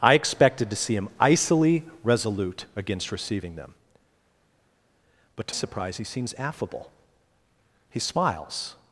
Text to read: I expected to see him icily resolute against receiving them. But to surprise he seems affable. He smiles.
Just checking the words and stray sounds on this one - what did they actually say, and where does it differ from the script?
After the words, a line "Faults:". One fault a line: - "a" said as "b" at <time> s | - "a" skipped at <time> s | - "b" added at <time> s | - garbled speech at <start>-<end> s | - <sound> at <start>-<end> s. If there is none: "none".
I expected to see him icily resolute against receiving them. But to surprise he seems affable. He smiles.
Faults:
none